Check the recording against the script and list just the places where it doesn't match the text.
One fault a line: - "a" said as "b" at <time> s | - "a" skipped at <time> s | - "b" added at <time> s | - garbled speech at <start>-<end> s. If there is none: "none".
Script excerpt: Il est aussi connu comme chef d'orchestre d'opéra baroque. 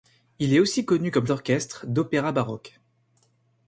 - "chef" skipped at 1.3 s